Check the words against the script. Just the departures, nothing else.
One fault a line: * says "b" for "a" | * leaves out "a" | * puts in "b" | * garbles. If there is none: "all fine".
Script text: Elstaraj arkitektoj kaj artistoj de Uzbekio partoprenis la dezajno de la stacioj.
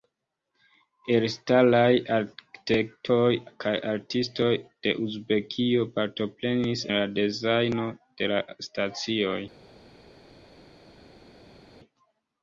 all fine